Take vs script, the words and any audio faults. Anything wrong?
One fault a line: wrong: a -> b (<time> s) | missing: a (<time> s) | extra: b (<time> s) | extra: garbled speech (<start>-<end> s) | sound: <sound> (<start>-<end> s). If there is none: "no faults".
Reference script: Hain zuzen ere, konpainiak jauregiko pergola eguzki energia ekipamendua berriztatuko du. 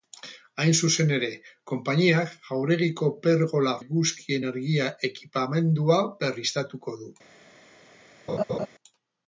sound: laugh (8.3-8.7 s)